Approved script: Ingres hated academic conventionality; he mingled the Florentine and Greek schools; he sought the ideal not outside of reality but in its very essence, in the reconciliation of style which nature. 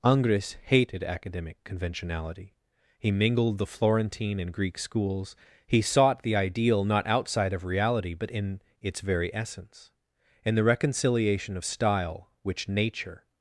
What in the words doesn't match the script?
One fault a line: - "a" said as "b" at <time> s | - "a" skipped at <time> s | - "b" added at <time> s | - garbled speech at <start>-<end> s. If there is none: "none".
none